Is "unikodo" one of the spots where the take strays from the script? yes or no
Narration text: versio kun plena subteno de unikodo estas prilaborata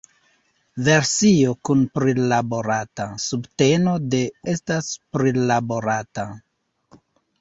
yes